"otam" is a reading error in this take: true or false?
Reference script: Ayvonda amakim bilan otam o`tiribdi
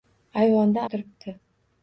true